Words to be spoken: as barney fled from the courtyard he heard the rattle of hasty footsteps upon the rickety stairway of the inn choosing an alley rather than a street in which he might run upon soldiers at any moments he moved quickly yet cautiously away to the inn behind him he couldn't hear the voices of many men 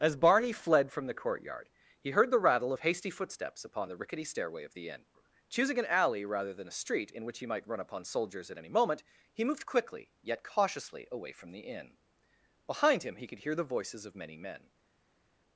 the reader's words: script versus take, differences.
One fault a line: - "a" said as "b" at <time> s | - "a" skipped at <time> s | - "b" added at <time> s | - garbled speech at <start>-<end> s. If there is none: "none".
- "moments" said as "moment" at 8.7 s
- "to" said as "from" at 11.3 s
- "couldn't" said as "could" at 13.3 s